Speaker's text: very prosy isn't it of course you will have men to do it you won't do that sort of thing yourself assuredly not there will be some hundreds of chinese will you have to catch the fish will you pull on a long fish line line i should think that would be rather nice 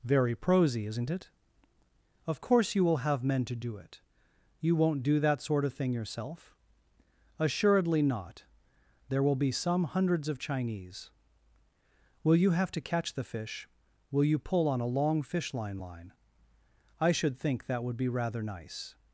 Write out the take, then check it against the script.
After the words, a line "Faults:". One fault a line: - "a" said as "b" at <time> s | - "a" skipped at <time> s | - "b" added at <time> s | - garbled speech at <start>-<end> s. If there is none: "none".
very prosy isn't it of course you will have men to do it you won't do that sort of thing yourself assuredly not there will be some hundreds of chinese will you have to catch the fish will you pull on a long fish line line i should think that would be rather nice
Faults:
none